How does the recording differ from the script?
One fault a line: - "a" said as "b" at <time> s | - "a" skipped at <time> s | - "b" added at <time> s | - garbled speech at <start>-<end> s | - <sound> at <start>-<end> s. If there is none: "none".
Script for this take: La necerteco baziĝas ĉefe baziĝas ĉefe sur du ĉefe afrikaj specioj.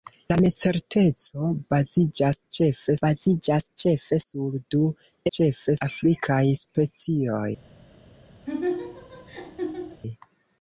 - laugh at 8.5-10.0 s